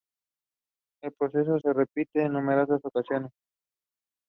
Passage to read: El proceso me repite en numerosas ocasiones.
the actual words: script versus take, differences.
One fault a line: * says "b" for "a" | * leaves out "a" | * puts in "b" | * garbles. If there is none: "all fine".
* says "se" for "me"